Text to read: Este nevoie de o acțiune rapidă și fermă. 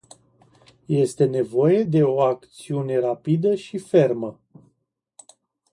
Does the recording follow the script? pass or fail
pass